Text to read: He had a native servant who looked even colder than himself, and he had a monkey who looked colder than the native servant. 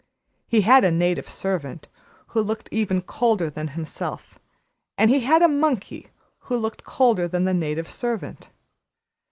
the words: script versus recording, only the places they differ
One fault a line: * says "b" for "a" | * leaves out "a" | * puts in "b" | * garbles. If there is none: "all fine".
all fine